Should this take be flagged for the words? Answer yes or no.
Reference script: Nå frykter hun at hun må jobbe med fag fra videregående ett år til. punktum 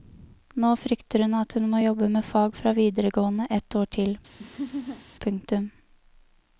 no